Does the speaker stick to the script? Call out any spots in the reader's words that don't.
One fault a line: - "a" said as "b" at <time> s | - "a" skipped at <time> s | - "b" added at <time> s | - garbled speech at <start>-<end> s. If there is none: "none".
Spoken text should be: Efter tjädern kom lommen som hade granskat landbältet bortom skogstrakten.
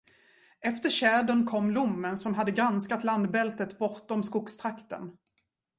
none